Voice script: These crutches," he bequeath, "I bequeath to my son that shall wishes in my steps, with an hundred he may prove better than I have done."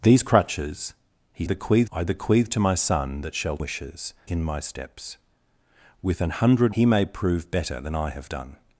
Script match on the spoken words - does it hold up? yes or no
yes